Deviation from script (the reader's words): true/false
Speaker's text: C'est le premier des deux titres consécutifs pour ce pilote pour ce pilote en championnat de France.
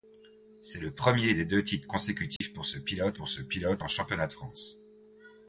false